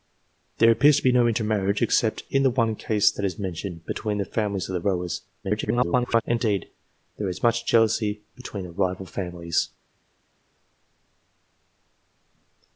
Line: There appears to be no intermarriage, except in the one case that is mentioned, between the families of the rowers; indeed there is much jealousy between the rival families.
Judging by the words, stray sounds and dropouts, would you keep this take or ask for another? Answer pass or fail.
fail